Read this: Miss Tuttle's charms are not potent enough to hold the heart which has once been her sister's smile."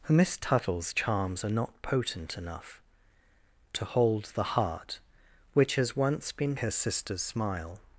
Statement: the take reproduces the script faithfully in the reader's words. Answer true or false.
true